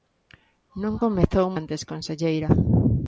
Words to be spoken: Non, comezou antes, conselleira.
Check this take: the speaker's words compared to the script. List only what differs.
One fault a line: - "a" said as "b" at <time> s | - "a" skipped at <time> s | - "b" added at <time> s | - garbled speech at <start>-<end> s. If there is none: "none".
none